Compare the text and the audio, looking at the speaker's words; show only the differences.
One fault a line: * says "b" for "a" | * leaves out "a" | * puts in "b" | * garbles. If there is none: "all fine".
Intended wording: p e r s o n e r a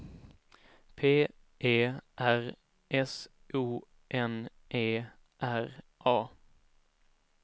all fine